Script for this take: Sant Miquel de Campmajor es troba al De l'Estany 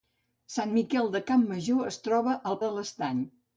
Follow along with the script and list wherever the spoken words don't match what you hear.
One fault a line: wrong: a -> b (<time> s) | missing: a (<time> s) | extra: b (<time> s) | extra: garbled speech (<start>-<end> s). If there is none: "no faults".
no faults